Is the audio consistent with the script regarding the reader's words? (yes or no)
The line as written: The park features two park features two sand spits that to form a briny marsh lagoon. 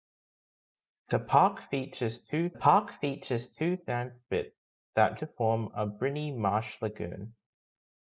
yes